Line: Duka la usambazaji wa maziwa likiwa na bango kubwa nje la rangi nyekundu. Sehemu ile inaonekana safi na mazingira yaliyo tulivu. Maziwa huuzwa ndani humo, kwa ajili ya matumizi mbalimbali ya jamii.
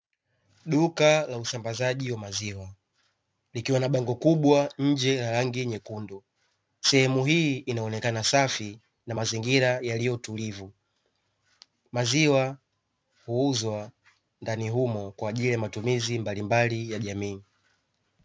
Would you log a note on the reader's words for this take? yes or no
yes